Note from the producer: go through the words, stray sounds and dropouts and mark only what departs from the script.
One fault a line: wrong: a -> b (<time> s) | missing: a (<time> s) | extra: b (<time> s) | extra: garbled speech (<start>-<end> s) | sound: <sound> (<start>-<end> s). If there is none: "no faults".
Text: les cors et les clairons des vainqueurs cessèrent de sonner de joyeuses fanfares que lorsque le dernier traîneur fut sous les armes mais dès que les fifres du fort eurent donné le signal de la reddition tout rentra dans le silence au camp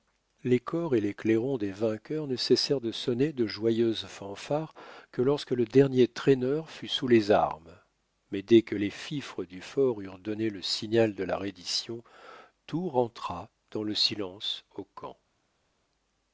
extra: ne (2.3 s)